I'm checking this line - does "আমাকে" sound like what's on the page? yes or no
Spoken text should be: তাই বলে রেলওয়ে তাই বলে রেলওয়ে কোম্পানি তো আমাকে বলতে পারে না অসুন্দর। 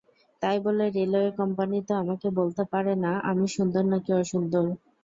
yes